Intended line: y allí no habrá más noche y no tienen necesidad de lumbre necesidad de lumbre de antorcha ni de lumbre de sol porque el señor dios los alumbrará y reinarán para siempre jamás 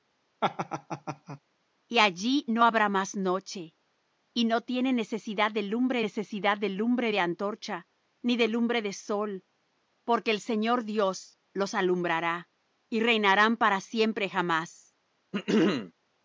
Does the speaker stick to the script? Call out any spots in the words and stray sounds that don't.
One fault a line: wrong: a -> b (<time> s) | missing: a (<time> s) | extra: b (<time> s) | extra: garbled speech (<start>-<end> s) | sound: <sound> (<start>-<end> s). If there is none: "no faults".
sound: laugh (0.4-1.4 s)
sound: throat clearing (15.3-15.9 s)